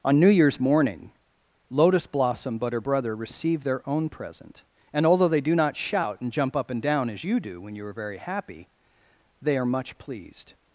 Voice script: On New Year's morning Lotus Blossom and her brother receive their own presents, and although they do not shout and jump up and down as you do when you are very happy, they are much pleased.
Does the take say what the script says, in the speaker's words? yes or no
no